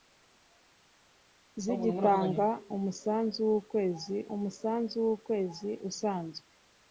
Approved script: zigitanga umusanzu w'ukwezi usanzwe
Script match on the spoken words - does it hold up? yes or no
no